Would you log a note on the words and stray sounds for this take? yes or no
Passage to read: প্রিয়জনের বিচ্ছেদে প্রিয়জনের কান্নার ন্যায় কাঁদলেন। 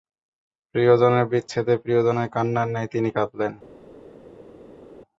yes